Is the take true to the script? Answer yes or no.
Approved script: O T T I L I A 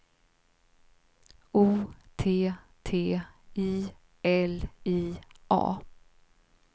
yes